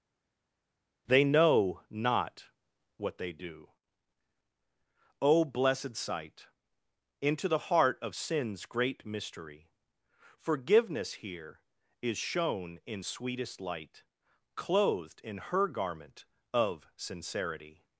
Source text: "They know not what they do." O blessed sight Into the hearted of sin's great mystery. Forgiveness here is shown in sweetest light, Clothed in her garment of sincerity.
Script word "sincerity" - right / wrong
right